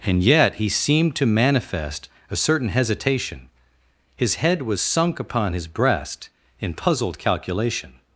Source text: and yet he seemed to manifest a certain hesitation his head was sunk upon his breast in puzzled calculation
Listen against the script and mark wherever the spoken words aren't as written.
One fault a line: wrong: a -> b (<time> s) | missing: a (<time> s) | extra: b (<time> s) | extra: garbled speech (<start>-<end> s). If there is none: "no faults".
no faults